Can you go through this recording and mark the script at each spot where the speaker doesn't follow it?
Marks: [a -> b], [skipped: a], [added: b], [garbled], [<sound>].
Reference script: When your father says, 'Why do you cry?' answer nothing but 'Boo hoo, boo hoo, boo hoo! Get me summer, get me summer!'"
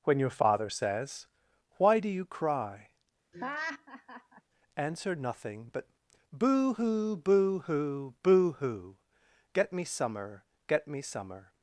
When your father says, 'Why do you cry?' [laugh] answer nothing but 'Boo hoo, boo hoo, boo hoo! Get me summer, get me summer!'"